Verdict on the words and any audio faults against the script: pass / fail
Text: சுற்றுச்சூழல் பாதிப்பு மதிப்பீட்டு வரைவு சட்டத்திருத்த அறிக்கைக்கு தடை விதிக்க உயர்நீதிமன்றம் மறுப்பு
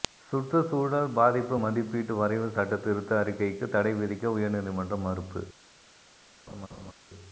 fail